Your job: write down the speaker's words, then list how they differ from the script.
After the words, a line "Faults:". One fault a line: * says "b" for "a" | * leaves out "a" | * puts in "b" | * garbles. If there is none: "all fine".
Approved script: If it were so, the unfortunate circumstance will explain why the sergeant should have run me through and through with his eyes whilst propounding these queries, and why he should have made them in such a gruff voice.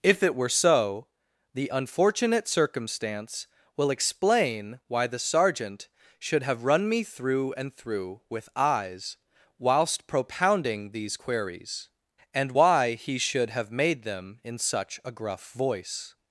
If it were so, the unfortunate circumstance will explain why the sergeant should have run me through and through with eyes whilst propounding these queries, and why he should have made them in such a gruff voice.
Faults:
* leaves out "his"